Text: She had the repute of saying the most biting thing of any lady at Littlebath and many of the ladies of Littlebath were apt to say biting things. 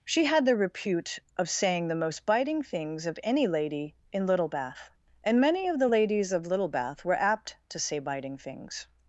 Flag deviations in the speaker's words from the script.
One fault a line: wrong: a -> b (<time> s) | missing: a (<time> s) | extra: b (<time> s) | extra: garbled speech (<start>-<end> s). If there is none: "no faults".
wrong: thing -> things (2.6 s)
wrong: at -> in (4.1 s)